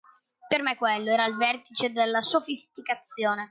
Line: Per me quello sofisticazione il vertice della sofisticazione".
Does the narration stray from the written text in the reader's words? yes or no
yes